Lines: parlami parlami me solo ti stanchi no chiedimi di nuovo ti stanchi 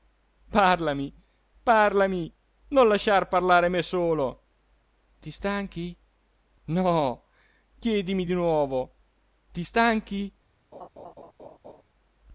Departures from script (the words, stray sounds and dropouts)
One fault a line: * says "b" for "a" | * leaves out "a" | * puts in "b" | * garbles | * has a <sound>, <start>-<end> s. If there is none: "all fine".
* puts in "non lasciar parlare"
* has a laugh, 10.7-11.8 s